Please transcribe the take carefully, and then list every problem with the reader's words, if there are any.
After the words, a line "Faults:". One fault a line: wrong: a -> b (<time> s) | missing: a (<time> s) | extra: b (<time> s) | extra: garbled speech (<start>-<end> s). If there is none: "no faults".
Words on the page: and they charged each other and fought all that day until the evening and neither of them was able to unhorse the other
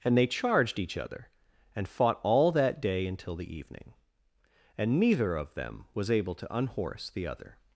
and they charged each other and fought all that day until the evening and neither of them was able to unhorse the other
Faults:
no faults